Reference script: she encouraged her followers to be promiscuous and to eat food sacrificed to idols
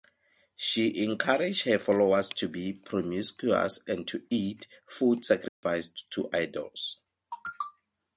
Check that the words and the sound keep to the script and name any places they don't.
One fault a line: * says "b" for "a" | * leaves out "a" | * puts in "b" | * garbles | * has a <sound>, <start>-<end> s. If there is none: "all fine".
* has a dropout, 5.5-5.6 s